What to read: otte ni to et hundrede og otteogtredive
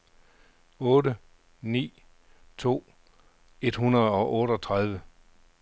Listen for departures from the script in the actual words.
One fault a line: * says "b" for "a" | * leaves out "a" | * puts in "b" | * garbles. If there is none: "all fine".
all fine